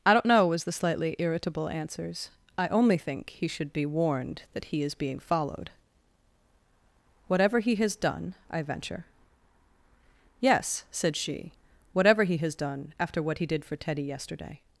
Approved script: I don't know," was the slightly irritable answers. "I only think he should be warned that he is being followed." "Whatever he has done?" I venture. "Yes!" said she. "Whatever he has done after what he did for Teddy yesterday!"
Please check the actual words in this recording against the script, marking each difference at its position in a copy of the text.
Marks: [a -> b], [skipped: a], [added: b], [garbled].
I don't know," was the slightly irritable answers. "I only think he should be warned that he is being followed." "Whatever he has done?" I venture. "Yes!" said she. "Whatever he has done after what he did for Teddy yesterday!"